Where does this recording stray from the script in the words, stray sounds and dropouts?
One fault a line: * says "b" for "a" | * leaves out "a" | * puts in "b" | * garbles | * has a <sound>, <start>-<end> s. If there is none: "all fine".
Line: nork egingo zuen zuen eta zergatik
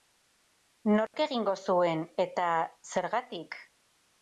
* has a dropout, 1.1-1.1 s
* leaves out "zuen"